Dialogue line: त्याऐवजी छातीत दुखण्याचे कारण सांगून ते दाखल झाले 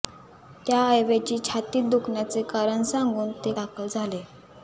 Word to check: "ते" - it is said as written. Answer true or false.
true